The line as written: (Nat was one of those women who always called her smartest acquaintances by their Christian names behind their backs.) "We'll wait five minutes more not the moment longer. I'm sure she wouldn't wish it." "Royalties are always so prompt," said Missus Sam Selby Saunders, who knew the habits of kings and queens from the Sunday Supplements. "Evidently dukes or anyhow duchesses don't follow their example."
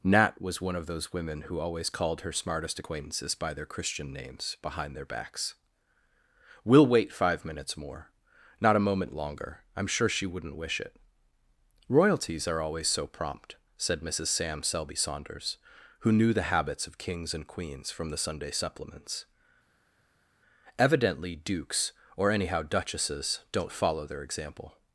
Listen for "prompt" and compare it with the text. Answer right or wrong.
right